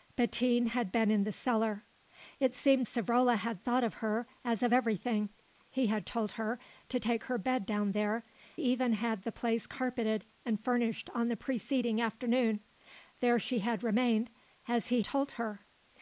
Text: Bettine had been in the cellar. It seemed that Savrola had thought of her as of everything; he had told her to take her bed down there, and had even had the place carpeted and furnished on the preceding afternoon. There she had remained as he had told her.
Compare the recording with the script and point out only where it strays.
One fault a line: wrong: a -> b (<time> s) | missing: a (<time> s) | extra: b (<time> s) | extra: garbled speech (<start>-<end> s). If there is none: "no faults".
missing: that (2.9 s)
missing: and had (8.2 s)
missing: had (15.0 s)